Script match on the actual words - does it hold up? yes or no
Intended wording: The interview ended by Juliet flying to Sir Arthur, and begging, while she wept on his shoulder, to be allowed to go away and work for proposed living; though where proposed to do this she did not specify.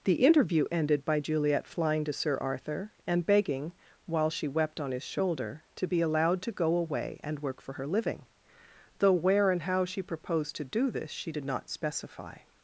no